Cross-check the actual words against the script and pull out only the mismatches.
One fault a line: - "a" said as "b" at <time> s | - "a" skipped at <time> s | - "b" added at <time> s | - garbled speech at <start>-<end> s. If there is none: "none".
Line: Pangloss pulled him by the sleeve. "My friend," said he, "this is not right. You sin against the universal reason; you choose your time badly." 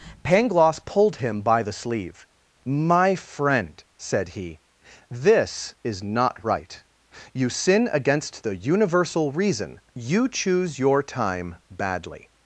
none